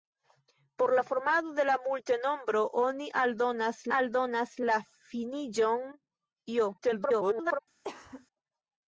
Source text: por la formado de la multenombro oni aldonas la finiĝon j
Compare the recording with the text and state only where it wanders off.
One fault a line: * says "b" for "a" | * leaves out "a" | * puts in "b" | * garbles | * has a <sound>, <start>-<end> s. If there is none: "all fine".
* puts in "aldonas"
* garbles
* has a cough, 7.8-8.3 s